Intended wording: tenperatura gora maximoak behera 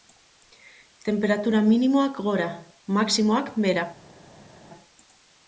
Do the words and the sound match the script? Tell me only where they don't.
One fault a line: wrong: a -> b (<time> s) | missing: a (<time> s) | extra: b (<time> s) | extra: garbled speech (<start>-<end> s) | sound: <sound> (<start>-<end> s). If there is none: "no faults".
extra: minimoak (1.7 s)